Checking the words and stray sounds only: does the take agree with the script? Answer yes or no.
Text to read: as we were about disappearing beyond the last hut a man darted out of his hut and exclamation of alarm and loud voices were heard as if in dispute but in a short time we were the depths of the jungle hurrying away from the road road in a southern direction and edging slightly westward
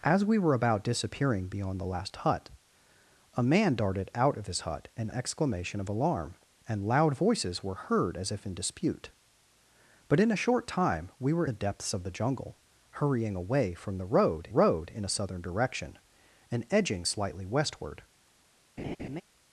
no